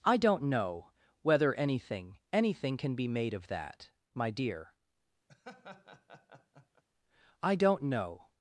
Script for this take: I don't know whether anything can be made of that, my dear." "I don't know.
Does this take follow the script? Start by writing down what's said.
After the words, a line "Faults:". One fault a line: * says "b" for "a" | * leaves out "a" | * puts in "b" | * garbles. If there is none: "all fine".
I don't know whether anything anything can be made of that, my dear." "I don't know.
Faults:
* puts in "anything"